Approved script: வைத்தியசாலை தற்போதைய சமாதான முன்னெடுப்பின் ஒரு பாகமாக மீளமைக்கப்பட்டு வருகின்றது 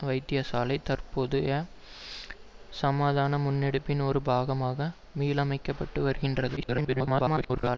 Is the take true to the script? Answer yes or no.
no